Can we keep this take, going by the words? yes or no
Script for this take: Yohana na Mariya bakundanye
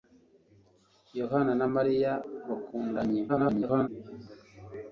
no